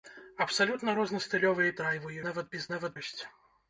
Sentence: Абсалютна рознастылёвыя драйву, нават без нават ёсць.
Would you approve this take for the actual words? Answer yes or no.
yes